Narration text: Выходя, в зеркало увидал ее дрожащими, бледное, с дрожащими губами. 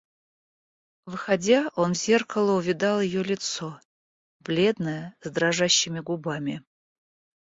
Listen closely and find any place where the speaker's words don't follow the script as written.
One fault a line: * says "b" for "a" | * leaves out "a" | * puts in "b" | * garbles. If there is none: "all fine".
* puts in "он"
* says "лицо" for "дрожащими"